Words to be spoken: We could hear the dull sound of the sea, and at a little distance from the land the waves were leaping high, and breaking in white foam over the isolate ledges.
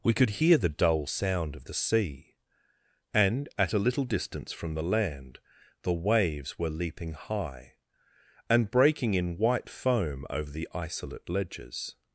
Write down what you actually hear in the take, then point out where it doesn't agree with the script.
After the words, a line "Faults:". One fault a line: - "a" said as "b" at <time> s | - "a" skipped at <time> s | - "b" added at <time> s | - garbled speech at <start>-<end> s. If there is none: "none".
We could hear the dull sound of the sea, and at a little distance from the land the waves were leaping high, and breaking in white foam over the isolate ledges.
Faults:
none